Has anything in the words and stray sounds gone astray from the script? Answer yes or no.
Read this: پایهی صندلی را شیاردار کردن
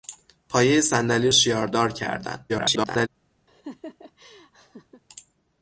yes